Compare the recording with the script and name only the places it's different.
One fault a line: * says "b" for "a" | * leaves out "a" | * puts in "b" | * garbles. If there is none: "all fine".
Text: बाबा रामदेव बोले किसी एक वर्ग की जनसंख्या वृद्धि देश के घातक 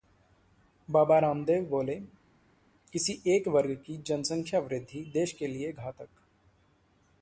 * puts in "लिए"